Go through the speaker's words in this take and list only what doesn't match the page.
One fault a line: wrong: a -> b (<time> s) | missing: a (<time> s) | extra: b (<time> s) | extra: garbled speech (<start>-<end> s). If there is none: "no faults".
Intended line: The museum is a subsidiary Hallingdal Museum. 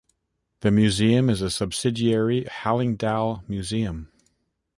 no faults